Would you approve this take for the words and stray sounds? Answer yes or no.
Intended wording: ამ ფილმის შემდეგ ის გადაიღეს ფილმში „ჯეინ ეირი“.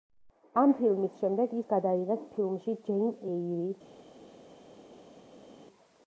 yes